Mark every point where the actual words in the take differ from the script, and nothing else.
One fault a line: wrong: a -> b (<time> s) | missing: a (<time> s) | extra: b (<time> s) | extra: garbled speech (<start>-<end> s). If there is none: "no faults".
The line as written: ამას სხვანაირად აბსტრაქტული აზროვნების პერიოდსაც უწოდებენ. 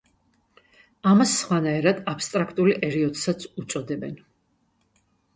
missing: აზროვნების (2.7 s)